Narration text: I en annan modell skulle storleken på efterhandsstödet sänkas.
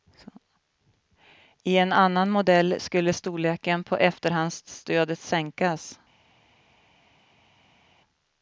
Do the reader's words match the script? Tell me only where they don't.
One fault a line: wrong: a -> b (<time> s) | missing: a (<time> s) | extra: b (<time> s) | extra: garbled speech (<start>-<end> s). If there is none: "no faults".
no faults